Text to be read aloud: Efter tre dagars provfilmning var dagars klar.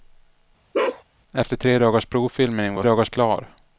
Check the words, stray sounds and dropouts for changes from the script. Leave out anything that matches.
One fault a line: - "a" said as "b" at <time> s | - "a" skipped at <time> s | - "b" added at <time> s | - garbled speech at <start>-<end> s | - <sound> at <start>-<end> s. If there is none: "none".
- bark at 0.7-1.0 s